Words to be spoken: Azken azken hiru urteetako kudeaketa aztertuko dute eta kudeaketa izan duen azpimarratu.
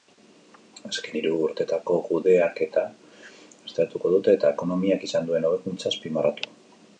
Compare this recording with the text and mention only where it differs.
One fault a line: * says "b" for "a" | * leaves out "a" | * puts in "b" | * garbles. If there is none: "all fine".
* leaves out "azken"
* says "ekonomiak" for "kudeaketa"
* puts in "hobekuntza"